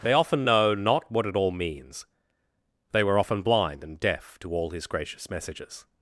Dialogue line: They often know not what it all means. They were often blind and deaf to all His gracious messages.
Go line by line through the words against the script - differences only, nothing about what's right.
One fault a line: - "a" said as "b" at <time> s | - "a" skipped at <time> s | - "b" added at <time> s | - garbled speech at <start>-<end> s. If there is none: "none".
none